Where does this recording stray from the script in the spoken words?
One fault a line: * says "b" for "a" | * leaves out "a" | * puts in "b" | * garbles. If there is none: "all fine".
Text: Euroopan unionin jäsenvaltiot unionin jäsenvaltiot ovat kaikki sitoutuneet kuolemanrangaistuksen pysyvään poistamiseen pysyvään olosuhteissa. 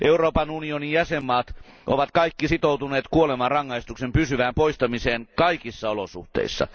* leaves out "unionin jäsenvaltiot"
* says "kaikissa" for "pysyvään"